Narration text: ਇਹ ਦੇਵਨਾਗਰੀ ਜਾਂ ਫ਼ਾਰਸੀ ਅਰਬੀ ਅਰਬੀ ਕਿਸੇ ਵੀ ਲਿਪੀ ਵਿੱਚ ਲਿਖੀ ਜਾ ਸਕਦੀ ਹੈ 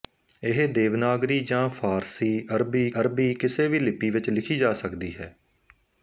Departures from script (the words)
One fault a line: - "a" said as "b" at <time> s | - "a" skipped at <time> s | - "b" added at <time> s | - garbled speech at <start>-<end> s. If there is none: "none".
none